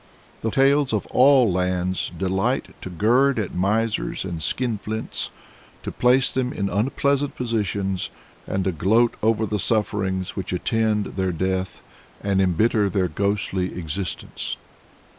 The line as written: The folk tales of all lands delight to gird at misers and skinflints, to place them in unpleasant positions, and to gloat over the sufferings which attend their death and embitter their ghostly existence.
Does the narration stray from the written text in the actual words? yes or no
yes